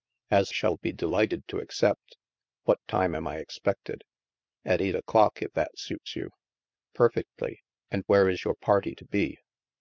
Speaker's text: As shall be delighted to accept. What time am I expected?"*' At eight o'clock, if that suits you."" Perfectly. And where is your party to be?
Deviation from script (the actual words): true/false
false